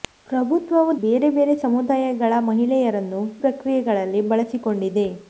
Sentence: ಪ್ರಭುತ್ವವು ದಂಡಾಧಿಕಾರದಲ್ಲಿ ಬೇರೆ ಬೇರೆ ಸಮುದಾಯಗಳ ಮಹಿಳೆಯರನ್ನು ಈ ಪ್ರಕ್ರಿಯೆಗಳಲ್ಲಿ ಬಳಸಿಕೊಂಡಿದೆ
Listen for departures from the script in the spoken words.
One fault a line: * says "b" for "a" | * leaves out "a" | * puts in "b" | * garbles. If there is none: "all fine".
* leaves out "ದಂಡಾಧಿಕಾರದಲ್ಲಿ"
* leaves out "ಈ"